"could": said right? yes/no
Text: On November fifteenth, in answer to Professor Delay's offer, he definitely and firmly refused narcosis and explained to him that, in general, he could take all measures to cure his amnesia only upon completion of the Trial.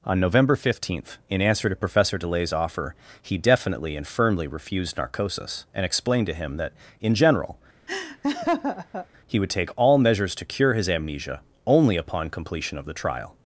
no